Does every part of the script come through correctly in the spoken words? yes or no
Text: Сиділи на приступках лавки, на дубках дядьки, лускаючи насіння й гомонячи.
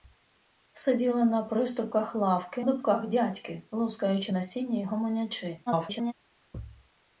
no